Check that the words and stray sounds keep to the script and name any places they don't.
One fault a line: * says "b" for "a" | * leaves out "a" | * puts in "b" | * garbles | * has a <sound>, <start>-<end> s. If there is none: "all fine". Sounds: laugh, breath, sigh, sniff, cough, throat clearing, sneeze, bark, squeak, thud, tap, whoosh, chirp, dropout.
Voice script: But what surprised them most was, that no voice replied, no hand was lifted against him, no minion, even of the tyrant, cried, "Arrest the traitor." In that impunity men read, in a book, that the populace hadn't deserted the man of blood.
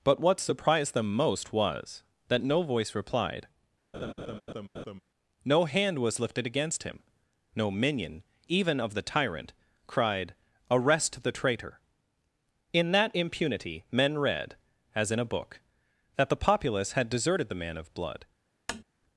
* has a laugh, 3.9-5.0 s
* puts in "as"
* says "had" for "hadn't"
* has a tap, 18.7-18.8 s